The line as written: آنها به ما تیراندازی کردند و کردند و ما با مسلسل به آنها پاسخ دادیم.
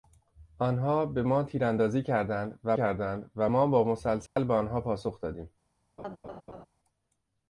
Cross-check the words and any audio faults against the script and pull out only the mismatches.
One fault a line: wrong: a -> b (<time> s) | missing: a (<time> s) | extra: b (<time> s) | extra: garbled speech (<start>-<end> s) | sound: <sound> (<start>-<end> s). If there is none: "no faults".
sound: dropout (4.3-4.4 s)
sound: laugh (6.0-6.7 s)